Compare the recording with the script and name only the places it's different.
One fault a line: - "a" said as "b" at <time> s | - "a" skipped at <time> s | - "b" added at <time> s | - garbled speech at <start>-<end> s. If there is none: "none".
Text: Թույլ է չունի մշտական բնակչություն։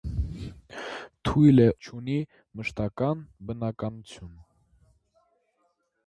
none